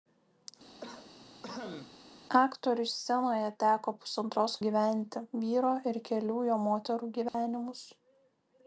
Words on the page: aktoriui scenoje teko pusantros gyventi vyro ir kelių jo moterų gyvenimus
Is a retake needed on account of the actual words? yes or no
no